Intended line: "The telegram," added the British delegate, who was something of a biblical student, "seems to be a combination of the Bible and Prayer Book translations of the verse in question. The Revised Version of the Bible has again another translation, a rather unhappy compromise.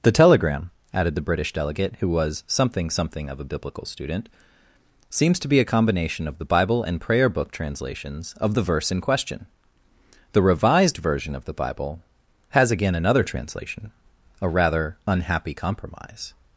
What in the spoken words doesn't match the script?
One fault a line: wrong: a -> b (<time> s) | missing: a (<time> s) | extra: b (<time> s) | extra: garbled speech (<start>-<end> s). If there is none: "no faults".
extra: something (2.9 s)